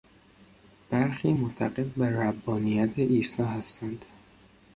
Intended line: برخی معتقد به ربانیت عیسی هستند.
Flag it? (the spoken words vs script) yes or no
no